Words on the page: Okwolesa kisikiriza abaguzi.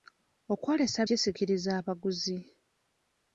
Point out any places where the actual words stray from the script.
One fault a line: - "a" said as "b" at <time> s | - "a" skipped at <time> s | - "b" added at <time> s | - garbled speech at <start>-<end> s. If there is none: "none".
none